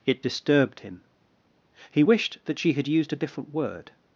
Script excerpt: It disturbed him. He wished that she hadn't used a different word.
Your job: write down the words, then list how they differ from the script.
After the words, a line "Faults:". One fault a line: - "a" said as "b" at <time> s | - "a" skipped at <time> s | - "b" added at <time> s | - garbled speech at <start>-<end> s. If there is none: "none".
It disturbed him. He wished that she had used a different word.
Faults:
- "hadn't" said as "had" at 2.7 s